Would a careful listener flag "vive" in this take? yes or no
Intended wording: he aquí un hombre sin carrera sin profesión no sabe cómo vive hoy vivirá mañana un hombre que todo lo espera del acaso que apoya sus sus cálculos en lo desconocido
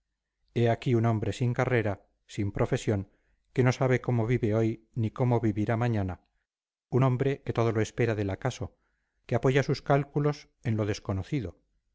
no